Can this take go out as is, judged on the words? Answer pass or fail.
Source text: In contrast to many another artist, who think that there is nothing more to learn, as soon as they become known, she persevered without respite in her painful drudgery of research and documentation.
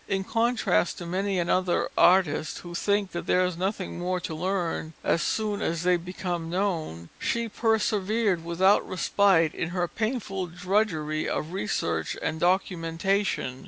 pass